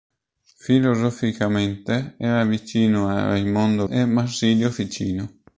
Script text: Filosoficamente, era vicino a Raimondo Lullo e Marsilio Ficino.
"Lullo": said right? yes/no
no